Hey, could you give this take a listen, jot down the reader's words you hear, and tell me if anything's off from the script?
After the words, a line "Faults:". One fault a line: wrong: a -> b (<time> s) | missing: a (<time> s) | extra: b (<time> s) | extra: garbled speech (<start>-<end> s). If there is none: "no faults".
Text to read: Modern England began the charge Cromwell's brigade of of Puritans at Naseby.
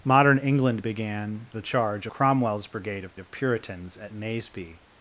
Modern England began the charge Cromwell's brigade of of Puritans at Naseby.
Faults:
no faults